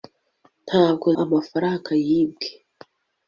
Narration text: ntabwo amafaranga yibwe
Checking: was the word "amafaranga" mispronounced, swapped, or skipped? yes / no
no